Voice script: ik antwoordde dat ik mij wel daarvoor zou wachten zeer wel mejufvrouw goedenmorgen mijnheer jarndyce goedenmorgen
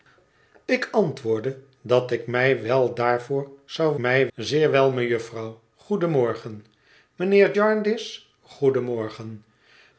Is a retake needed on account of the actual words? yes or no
yes